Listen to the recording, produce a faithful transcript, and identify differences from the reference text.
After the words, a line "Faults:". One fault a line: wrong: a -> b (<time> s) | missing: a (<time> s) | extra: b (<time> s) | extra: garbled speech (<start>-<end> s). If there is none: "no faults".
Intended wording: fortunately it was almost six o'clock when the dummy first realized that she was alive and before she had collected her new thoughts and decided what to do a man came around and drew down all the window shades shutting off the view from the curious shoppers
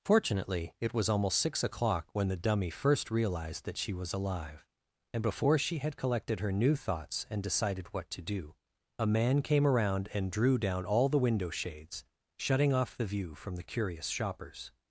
fortunately it was almost six o'clock when the dummy first realized that she was alive and before she had collected her new thoughts and decided what to do a man came around and drew down all the window shades shutting off the view from the curious shoppers
Faults:
no faults